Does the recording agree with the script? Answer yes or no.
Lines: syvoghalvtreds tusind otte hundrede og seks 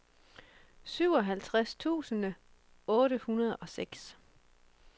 yes